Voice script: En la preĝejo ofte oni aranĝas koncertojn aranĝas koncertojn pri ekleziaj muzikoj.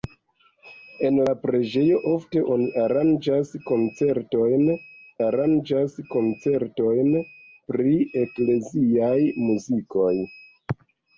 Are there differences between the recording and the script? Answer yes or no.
no